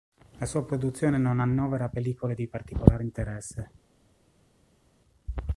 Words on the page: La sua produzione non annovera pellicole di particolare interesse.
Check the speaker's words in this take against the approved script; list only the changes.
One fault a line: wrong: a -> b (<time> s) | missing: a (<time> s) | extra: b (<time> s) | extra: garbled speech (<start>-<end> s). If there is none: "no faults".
no faults